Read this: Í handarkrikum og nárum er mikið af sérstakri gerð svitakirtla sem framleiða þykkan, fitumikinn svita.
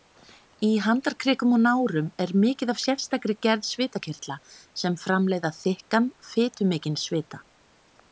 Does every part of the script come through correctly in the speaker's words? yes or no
yes